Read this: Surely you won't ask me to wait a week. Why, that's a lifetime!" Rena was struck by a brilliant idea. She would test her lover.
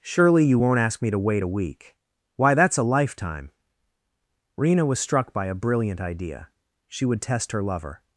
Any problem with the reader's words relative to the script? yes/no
no